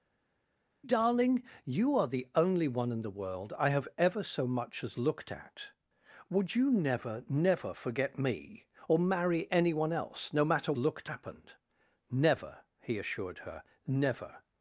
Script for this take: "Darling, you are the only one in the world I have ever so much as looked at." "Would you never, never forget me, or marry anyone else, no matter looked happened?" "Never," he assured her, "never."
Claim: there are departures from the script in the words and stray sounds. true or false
false